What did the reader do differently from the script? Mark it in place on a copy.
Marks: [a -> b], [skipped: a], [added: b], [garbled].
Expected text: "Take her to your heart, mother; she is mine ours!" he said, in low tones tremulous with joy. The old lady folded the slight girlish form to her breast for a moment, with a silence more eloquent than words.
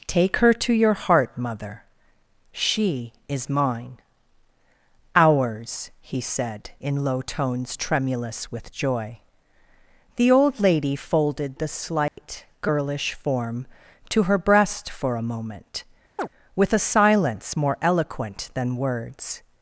"Take her to your heart, mother; she is mine ours!" he said, in low tones tremulous with joy. The old lady folded the slight girlish form to her breast for a moment, with a silence more eloquent than words.